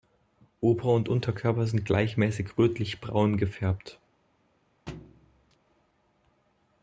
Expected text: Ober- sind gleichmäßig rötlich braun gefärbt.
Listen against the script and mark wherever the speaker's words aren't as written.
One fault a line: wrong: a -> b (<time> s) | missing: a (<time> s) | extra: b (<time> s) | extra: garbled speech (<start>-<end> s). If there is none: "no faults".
extra: und Unterkörper (0.9 s)